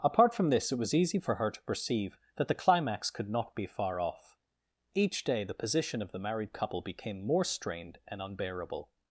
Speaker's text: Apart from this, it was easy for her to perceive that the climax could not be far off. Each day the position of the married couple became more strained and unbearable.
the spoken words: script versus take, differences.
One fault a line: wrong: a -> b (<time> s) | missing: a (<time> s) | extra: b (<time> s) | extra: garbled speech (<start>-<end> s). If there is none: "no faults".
no faults